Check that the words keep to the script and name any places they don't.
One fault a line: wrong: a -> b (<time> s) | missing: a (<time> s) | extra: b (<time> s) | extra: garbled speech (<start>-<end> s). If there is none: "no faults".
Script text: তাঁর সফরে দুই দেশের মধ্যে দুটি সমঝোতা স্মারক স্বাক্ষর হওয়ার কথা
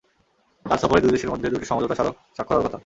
no faults